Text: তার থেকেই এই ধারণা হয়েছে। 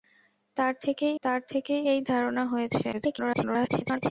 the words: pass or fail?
fail